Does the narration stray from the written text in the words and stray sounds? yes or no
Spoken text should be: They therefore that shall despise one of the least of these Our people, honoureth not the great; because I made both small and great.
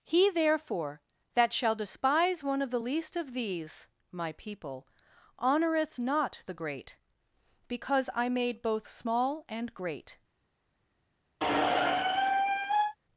yes